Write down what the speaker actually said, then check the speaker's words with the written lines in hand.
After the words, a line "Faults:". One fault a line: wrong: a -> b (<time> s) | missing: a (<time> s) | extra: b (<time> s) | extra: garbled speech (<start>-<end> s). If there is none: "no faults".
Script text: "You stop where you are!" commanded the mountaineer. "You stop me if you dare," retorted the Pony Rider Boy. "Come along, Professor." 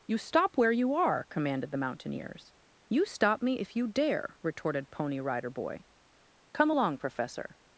"You stop where you are!" commanded the mountaineers. "You stop me if you dare," retorted Pony Rider Boy. "Come along, Professor."
Faults:
wrong: mountaineer -> mountaineers (1.7 s)
missing: the (4.9 s)